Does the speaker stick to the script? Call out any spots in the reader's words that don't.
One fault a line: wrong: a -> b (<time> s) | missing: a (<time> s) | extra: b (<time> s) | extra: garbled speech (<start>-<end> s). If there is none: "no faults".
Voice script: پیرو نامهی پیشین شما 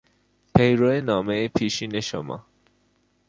no faults